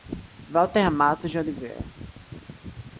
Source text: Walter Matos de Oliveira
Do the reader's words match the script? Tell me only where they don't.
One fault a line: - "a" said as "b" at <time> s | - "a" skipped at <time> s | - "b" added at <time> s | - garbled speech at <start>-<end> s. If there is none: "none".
none